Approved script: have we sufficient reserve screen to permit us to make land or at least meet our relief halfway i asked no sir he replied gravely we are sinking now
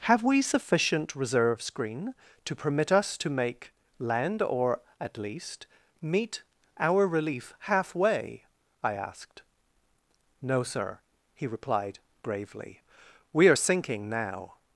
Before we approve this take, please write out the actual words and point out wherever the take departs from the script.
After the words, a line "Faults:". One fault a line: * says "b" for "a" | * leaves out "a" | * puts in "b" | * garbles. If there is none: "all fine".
have we sufficient reserve screen to permit us to make land or at least meet our relief halfway i asked no sir he replied gravely we are sinking now
Faults:
all fine